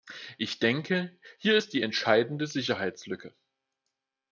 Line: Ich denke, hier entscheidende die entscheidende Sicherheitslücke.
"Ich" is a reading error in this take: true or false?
false